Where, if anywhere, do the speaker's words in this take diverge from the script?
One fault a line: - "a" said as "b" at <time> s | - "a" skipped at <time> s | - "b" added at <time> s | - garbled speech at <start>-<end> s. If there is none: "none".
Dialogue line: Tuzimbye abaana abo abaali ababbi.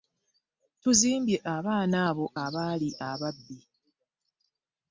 none